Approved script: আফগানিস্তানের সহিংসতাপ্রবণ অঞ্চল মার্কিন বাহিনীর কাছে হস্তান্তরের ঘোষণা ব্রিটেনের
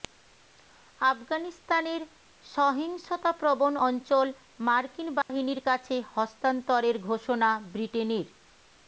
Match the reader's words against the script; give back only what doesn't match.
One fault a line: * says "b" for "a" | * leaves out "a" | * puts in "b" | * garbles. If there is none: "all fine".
all fine